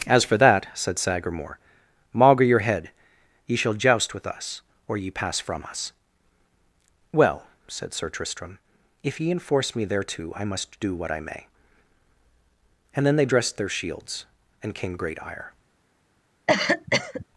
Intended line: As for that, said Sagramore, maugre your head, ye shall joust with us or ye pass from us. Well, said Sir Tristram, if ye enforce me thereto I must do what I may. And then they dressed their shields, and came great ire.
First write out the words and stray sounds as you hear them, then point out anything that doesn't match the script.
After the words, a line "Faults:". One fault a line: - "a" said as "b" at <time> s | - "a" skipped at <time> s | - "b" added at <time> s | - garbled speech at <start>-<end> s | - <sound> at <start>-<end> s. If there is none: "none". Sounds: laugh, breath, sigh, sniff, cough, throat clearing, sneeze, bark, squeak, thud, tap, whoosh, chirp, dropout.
As for that, said Sagramore, maugre your head, ye shall joust with us or ye pass from us. Well, said Sir Tristram, if ye enforce me thereto I must do what I may. And then they dressed their shields, and came great ire.
Faults:
- cough at 16.5-17.3 s